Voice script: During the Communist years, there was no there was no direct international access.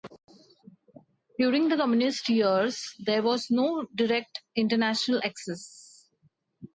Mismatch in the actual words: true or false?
true